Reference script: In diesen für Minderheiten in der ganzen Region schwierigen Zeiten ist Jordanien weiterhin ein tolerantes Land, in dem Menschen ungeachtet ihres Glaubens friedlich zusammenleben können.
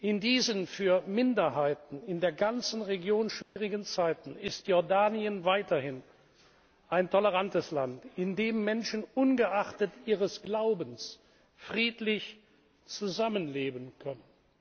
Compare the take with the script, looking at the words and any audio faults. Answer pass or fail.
fail